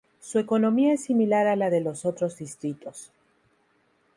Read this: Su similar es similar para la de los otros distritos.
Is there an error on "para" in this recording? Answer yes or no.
yes